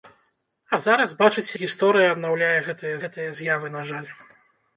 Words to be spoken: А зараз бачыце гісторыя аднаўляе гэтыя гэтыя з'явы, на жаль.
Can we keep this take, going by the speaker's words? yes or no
yes